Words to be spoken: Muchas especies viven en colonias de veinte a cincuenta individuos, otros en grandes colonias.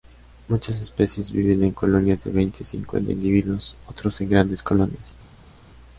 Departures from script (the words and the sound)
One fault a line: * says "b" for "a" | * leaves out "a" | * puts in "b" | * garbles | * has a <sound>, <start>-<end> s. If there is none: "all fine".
all fine